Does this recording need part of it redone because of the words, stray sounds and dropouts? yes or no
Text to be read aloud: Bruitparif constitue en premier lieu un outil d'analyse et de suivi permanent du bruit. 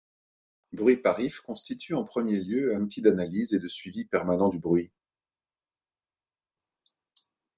yes